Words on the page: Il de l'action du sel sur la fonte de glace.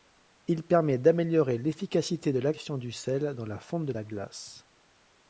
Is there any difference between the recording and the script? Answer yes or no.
yes